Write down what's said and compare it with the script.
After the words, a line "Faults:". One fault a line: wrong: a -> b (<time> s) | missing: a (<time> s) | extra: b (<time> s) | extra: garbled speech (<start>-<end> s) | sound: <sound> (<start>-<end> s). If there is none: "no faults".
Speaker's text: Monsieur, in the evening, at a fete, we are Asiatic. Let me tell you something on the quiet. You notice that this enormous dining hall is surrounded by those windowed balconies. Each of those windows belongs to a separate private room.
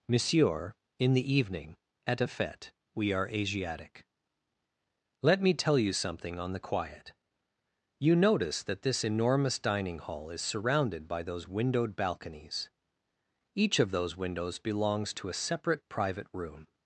Monsieur, in the evening, at a fete, we are Asiatic. Let me tell you something on the quiet. You notice that this enormous dining hall is surrounded by those windowed balconies. Each of those windows belongs to a separate private room.
Faults:
no faults